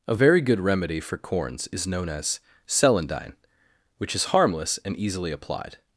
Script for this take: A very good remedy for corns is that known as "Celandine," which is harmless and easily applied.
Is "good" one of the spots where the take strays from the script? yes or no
no